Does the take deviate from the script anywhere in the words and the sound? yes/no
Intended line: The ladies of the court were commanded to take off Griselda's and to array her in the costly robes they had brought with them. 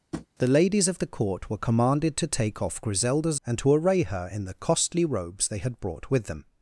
yes